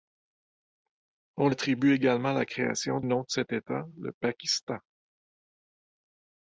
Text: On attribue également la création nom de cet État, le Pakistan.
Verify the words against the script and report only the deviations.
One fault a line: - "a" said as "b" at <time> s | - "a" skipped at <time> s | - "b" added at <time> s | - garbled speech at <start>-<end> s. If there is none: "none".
none